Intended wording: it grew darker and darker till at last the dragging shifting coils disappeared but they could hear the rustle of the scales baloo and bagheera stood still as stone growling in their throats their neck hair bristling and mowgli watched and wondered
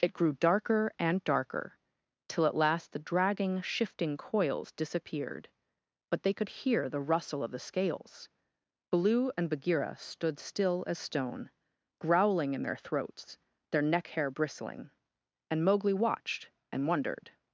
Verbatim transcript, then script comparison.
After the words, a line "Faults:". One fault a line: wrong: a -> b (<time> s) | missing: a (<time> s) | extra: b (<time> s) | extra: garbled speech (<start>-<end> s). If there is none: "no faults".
it grew darker and darker till at last the dragging shifting coils disappeared but they could hear the rustle of the scales baloo and bagheera stood still as stone growling in their throats their neck hair bristling and mowgli watched and wondered
Faults:
no faults